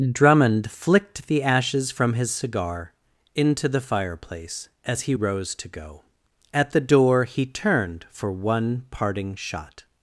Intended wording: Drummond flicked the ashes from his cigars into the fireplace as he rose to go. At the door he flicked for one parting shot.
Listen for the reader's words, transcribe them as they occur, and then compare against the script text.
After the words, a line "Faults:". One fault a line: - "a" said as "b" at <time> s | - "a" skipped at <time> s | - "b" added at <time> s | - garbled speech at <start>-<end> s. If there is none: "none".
Drummond flicked the ashes from his cigar into the fireplace as he rose to go. At the door he turned for one parting shot.
Faults:
- "cigars" said as "cigar" at 2.3 s
- "flicked" said as "turned" at 7.4 s